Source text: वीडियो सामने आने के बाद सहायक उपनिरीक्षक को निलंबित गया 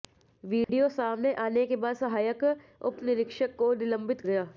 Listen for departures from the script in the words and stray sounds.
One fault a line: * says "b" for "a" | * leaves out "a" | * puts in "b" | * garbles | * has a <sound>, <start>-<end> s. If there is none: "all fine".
* has a dropout, 0.6-0.7 s